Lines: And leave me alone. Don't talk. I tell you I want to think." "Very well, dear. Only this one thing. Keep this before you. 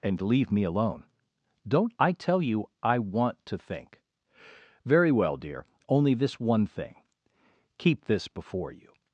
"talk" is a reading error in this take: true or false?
true